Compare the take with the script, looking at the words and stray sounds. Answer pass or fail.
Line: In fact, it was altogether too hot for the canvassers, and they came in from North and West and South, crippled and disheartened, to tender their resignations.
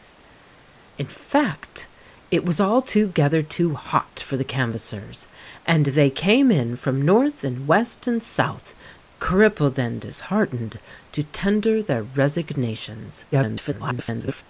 fail